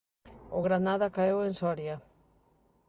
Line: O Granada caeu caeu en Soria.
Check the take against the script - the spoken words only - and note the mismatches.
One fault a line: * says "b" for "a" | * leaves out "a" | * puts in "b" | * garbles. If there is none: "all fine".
* leaves out "caeu"